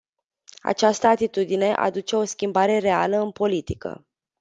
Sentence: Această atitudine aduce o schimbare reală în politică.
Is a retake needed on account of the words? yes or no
no